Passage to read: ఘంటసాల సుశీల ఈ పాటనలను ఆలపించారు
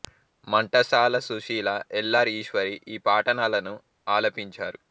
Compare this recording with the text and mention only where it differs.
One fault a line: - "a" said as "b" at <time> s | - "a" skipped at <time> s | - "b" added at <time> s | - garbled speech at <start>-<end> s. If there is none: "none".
- "ఎల్ ఆర్ ఈశ్వరి" added at 1.9 s